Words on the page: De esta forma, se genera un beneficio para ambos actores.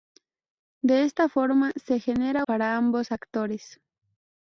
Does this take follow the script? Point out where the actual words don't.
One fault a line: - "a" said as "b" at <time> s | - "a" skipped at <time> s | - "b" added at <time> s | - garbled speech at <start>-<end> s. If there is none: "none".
- "un beneficio" skipped at 2.5 s